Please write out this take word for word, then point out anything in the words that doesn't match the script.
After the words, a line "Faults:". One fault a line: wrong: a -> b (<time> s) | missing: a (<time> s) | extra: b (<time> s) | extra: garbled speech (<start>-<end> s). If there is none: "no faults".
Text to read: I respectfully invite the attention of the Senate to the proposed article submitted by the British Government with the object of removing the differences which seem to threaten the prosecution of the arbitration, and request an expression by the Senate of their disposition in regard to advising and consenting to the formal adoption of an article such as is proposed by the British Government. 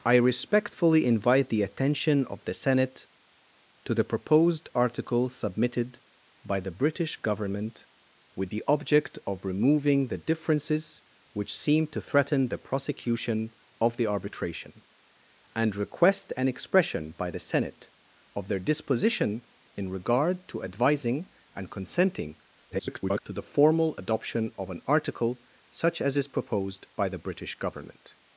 I respectfully invite the attention of the Senate to the proposed article submitted by the British Government with the object of removing the differences which seem to threaten the prosecution of the arbitration, and request an expression by the Senate of their disposition in regard to advising and consenting [garbled] to the formal adoption of an article such as is proposed by the British Government.
Faults:
extra: garbled speech (22.7-23.2 s)